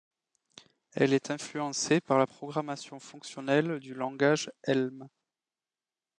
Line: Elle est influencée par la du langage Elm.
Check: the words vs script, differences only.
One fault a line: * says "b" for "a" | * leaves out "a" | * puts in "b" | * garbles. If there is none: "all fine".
* puts in "programmation fonctionnelle"